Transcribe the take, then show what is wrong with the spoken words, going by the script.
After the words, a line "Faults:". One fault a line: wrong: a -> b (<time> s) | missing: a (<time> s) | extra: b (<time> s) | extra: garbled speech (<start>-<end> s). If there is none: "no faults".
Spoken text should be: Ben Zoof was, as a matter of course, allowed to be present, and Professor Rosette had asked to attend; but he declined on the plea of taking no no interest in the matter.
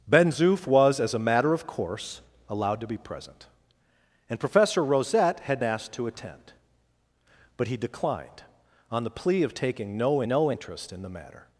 Ben Zoof was, as a matter of course, allowed to be present, and Professor Rosette had asked to attend; but he declined on the plea of taking no no interest in the matter.
Faults:
no faults